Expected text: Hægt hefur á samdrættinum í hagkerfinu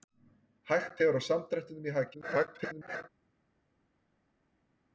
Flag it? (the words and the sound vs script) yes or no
yes